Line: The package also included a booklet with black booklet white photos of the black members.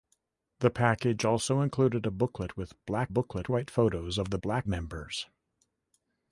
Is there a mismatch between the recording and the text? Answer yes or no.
no